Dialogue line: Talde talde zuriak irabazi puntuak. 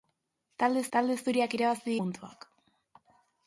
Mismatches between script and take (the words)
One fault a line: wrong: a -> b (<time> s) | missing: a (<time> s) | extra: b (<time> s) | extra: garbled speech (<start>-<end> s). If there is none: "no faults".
no faults